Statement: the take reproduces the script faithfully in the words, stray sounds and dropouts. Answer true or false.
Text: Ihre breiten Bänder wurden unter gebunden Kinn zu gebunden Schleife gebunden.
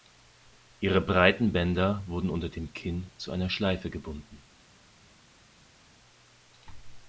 false